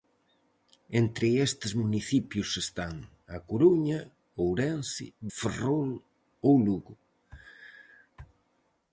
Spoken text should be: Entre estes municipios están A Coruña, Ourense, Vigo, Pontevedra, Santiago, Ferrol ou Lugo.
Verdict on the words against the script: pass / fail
fail